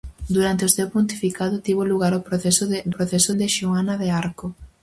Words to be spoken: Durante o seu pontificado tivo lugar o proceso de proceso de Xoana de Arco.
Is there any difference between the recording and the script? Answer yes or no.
no